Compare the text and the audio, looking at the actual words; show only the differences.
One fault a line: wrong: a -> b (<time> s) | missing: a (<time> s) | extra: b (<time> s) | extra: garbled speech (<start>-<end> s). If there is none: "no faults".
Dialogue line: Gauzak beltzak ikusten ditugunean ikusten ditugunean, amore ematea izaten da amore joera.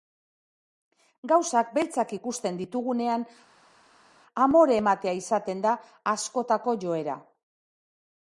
missing: ikusten ditugunean (3.3 s)
wrong: amore -> askotako (6.1 s)